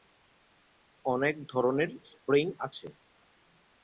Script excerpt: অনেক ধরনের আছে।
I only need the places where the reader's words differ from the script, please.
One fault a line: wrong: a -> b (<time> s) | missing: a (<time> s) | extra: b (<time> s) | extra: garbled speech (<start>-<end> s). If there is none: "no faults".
extra: স্প্রিং (2.0 s)